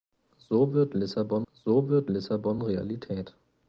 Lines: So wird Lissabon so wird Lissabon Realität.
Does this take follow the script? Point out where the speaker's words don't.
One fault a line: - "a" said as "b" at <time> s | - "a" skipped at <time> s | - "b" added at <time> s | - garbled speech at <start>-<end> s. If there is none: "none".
none